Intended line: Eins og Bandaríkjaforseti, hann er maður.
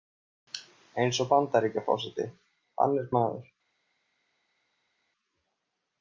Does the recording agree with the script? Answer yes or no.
yes